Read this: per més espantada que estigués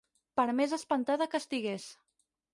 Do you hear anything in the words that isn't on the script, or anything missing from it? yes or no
no